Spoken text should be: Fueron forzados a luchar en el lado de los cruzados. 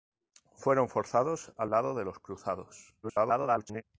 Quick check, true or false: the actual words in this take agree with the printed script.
false